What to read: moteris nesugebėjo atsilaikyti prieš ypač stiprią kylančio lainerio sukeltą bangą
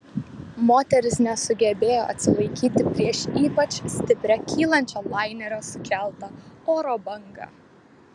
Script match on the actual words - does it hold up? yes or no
no